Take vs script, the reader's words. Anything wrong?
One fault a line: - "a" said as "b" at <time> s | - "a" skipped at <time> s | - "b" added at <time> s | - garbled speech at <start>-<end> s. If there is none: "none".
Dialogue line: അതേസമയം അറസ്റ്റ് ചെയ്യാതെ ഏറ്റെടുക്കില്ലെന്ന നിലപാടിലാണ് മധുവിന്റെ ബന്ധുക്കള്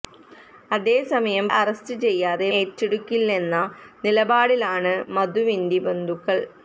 none